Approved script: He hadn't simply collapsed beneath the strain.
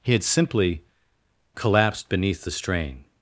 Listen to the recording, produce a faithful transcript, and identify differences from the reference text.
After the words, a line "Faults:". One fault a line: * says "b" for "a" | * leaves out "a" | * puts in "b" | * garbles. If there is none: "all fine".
He had simply collapsed beneath the strain.
Faults:
* says "had" for "hadn't"